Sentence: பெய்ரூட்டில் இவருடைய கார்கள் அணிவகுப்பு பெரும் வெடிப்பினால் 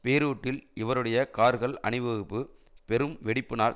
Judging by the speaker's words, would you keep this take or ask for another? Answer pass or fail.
pass